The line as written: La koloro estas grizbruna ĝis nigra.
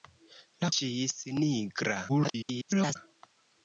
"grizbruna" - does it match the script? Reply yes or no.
no